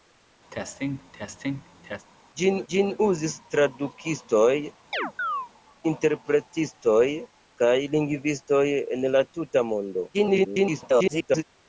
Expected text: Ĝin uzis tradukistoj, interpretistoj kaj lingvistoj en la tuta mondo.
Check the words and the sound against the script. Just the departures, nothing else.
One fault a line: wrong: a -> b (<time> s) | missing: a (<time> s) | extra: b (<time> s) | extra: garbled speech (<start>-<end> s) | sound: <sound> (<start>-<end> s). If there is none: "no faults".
sound: cough (0.5-2.1 s)
extra: ĝin (2.7 s)
sound: chirp (4.9-5.5 s)
extra: garbled speech (10.1-11.4 s)